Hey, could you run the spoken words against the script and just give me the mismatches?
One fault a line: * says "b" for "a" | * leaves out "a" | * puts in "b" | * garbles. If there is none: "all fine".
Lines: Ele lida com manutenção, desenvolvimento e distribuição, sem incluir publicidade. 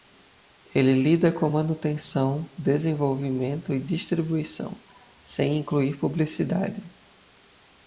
all fine